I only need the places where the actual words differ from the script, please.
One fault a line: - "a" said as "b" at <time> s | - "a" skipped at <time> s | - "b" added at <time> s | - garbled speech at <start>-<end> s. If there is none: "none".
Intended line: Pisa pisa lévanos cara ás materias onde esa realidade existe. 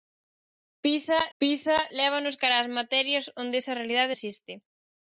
none